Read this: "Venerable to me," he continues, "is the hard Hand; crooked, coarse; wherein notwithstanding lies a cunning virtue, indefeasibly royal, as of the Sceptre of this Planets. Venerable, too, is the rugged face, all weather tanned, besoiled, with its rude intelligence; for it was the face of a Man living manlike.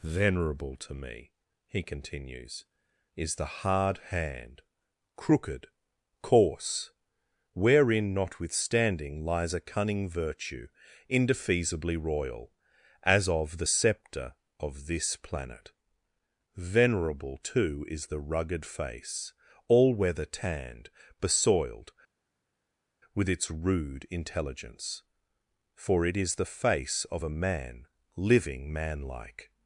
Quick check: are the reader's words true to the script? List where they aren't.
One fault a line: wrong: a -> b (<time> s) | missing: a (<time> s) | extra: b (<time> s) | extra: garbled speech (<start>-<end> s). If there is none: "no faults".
wrong: Planets -> Planet (15.2 s)
wrong: was -> is (26.2 s)